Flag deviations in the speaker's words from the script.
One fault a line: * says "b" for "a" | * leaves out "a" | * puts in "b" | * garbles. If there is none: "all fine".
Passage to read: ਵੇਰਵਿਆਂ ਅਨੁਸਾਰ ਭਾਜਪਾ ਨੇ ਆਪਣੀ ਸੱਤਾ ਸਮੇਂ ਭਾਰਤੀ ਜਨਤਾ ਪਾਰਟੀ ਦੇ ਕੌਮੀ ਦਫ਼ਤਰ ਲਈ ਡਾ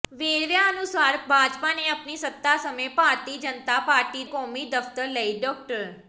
* leaves out "ਦੇ"